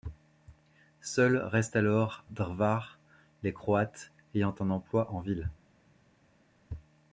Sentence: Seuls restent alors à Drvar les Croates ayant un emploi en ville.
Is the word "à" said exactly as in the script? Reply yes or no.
no